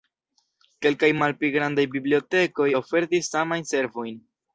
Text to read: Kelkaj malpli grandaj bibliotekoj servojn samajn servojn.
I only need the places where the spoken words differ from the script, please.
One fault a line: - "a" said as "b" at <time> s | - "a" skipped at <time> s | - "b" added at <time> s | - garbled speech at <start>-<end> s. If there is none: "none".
- "servojn" said as "ofertis" at 2.8 s